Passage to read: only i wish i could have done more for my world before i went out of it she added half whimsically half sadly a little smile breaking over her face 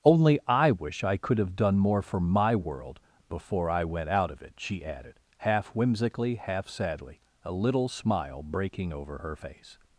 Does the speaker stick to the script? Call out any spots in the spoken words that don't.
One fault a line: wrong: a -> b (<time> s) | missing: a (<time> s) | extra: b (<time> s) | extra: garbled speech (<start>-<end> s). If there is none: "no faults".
no faults